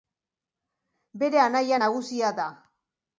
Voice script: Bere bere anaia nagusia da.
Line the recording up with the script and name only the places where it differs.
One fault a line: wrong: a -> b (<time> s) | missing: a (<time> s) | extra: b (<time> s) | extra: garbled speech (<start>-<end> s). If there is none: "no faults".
missing: bere (1.4 s)